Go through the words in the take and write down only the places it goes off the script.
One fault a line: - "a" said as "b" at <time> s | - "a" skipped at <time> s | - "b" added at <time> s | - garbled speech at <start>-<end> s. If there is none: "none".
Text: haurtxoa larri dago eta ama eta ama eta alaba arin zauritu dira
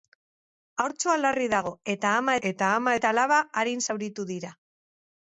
none